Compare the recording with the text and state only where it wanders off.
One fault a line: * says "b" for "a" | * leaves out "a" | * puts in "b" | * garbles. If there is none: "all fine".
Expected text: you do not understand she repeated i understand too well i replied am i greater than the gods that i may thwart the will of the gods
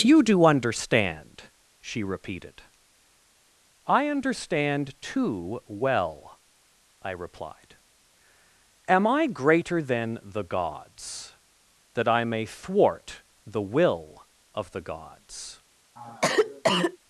* leaves out "not"